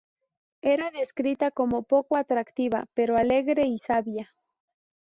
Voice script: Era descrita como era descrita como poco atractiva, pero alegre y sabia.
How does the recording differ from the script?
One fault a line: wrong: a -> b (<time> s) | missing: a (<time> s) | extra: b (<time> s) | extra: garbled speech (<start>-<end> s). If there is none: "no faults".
missing: era descrita como (1.8 s)